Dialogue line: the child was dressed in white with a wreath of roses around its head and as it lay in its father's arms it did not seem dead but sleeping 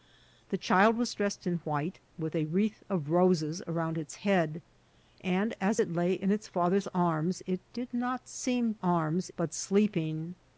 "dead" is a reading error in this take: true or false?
true